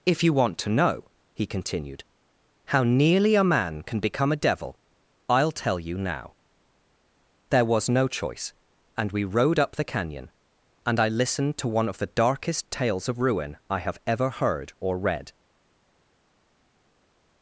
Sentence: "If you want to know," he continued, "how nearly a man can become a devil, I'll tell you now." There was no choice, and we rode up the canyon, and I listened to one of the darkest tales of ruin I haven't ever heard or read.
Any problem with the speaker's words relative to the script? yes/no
yes